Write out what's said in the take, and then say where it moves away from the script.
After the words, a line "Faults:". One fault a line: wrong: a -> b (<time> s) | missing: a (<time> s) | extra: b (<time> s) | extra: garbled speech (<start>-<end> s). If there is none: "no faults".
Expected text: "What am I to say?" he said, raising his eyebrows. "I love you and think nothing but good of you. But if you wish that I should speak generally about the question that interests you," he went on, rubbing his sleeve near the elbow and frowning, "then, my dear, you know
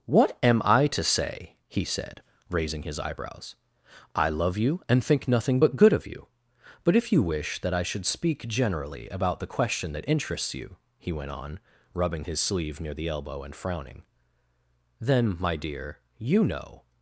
"What am I to say?" he said, raising his eyebrows. "I love you and think nothing but good of you. But if you wish that I should speak generally about the question that interests you," he went on, rubbing his sleeve near the elbow and frowning, "then, my dear, you know
Faults:
no faults